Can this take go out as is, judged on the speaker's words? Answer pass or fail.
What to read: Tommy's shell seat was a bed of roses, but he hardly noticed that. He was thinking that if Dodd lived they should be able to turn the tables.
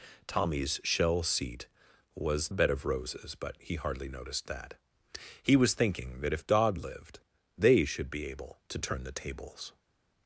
pass